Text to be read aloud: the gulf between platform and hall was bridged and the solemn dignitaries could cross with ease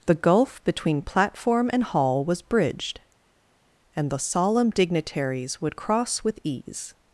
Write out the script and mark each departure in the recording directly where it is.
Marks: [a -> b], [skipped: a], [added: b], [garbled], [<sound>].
the gulf between platform and hall was bridged and the solemn dignitaries [could -> would] cross with ease